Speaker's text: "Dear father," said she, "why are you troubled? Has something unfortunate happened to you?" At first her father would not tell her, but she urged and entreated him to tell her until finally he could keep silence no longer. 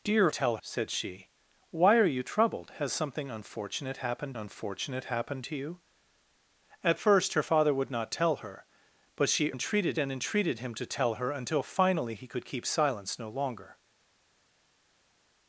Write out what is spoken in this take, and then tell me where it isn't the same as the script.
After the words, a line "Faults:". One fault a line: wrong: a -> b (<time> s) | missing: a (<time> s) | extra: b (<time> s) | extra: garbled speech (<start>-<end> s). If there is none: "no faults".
"Dear tell," said she, "why are you troubled? Has something unfortunate happened unfortunate happened to you?" At first her father would not tell her, but she entreated and entreated him to tell her until finally he could keep silence no longer.
Faults:
wrong: father -> tell (0.3 s)
extra: unfortunate happened (4.4 s)
wrong: urged -> entreated (9.5 s)